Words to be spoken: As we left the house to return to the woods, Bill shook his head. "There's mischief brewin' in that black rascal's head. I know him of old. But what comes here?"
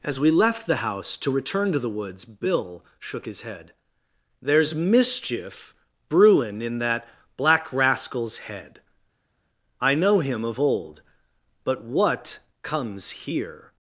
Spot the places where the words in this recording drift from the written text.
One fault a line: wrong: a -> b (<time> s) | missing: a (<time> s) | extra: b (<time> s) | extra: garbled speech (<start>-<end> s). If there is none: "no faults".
no faults